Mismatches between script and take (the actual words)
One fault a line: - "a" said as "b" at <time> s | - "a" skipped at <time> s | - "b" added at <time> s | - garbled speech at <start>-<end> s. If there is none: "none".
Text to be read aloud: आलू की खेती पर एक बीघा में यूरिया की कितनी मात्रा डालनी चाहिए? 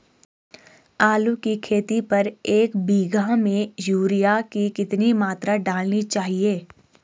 none